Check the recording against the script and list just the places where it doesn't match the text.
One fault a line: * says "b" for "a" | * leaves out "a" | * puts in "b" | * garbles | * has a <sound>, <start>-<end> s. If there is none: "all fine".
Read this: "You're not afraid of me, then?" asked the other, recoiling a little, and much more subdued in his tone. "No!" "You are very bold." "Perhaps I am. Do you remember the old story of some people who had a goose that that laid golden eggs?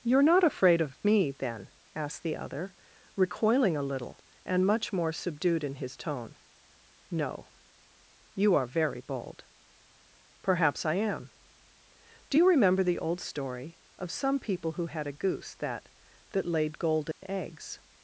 * has a dropout, 17.1-17.2 s